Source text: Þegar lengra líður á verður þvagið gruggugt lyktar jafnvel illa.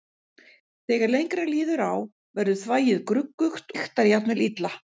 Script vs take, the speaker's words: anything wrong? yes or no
no